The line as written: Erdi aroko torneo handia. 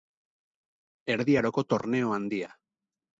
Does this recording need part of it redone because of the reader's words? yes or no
no